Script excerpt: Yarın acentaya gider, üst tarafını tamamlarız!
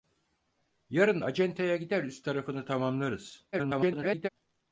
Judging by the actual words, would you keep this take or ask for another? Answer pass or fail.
fail